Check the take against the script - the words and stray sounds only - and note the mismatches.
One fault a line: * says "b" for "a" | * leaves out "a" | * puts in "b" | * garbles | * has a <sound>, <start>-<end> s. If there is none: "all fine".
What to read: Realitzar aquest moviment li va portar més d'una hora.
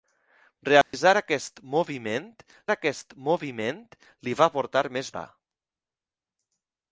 * has a dropout, 0.8-0.9 s
* puts in "aquest moviment"
* leaves out "d'una"